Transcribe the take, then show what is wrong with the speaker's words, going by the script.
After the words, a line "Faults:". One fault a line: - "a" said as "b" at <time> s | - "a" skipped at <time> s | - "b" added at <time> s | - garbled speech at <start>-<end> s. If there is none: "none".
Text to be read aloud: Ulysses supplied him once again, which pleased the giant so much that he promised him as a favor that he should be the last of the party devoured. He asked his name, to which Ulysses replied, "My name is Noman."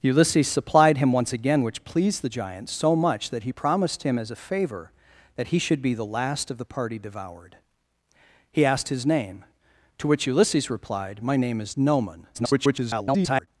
Ulysses supplied him once again, which pleased the giant so much that he promised him as a favor that he should be the last of the party devoured. He asked his name, to which Ulysses replied, "My name is Noman." [garbled]
Faults:
- garbled speech at 12.3-13.5 s